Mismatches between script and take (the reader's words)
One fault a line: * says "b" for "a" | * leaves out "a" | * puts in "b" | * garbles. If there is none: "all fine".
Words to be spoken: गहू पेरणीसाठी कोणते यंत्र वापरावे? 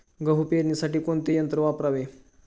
all fine